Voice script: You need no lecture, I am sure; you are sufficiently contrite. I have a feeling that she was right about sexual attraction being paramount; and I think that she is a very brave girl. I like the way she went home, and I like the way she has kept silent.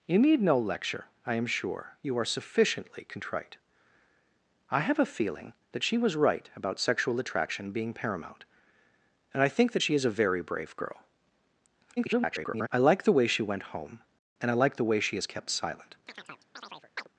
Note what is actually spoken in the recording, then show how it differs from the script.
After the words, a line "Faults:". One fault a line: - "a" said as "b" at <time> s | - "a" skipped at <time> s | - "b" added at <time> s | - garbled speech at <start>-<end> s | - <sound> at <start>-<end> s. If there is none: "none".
You need no lecture, I am sure; you are sufficiently contrite. I have a feeling that she was right about sexual attraction being paramount; and I think that she is a very brave girl. [garbled] I like the way she went home, and I like the way she has kept silent.
Faults:
- garbled speech at 12.0-12.7 s
- chirp at 16.1-17.1 s